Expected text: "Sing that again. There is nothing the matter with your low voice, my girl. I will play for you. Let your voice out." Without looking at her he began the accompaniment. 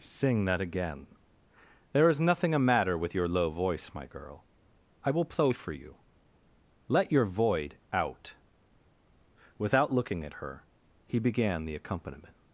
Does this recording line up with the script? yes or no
no